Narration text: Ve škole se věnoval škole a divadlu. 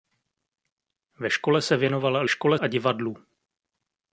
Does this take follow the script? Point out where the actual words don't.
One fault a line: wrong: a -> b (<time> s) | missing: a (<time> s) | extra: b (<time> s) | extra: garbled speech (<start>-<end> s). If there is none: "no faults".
no faults